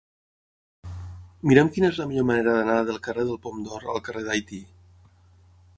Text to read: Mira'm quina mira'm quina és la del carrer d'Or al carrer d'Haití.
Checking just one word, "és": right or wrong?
wrong